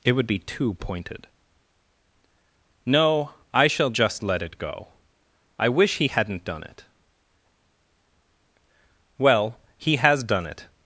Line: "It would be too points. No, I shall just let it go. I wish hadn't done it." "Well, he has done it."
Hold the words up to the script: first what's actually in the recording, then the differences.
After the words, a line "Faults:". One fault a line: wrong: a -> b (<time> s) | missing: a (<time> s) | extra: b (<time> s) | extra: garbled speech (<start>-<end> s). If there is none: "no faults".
"It would be too pointed. No, I shall just let it go. I wish he hadn't done it." "Well, he has done it."
Faults:
wrong: points -> pointed (0.8 s)
extra: he (6.0 s)